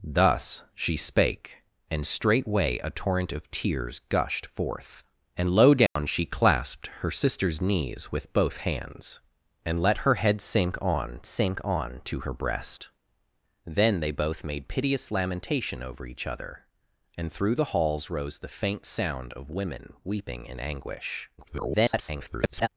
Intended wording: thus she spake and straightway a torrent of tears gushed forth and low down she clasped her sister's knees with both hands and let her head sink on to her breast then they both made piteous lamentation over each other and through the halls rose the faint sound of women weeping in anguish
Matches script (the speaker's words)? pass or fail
fail